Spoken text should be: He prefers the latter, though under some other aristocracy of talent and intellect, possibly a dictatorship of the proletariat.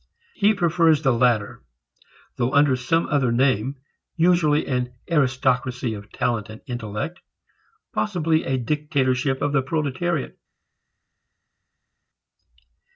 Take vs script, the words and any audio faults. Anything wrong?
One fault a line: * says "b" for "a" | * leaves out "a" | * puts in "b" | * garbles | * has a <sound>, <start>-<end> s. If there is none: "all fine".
* puts in "name usually an"